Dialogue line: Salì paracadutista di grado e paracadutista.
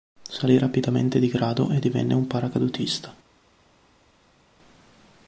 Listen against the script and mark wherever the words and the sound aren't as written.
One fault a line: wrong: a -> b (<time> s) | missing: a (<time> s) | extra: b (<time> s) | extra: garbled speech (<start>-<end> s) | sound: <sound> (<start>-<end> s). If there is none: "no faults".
wrong: paracadutista -> rapidamente (0.6 s)
extra: divenne un (1.8 s)